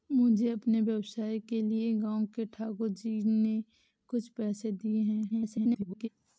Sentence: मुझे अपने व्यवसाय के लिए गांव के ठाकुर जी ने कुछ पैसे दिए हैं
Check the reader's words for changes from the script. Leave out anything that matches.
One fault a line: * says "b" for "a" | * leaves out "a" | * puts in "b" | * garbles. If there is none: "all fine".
* garbles